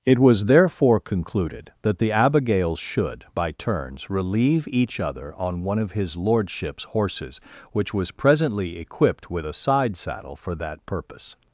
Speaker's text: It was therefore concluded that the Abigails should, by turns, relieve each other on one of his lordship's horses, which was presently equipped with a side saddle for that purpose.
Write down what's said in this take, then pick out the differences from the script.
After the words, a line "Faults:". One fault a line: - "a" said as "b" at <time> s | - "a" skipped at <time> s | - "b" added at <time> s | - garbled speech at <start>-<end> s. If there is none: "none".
It was therefore concluded that the Abigails should, by turns, relieve each other on one of his lordship's horses, which was presently equipped with a side saddle for that purpose.
Faults:
none